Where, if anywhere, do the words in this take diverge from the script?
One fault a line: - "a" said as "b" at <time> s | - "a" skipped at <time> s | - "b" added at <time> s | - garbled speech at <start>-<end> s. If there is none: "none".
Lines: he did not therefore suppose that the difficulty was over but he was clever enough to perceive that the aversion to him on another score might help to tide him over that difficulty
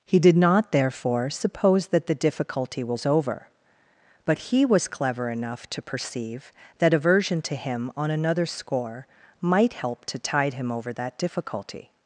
- "the" skipped at 6.9 s